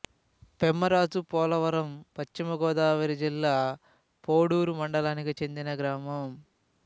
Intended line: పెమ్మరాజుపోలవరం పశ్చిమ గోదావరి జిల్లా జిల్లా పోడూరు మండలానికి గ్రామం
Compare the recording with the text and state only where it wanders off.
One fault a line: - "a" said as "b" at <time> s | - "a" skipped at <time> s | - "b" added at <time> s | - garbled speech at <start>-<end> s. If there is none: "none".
- "జిల్లా" skipped at 3.5 s
- "చెందిన" added at 5.4 s